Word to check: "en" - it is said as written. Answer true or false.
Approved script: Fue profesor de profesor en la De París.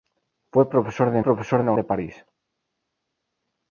true